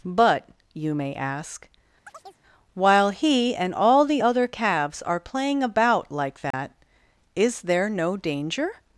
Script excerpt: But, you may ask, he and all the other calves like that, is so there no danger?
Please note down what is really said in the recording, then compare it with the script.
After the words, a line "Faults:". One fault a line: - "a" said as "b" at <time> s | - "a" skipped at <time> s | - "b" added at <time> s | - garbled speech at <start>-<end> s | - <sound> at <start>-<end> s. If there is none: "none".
But, you may ask, while he and all the other calves are playing about like that, is there no danger?
Faults:
- chirp at 2.1-2.4 s
- "while" added at 2.7 s
- "are playing about" added at 5.0 s
- dropout at 6.5-6.5 s
- "so" skipped at 7.6 s